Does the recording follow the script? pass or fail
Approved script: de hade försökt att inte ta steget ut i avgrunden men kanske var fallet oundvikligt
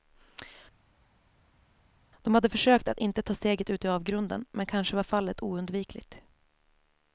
pass